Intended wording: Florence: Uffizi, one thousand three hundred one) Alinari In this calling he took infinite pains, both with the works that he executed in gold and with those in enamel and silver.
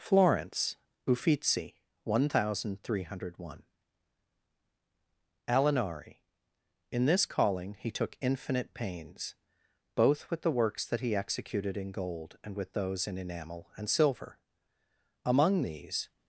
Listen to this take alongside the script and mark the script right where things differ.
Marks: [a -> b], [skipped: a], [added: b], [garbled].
Florence: Uffizi, one thousand three hundred one) Alinari In this calling he took infinite pains, both with the works that he executed in gold and with those in enamel and silver. [added: Among these]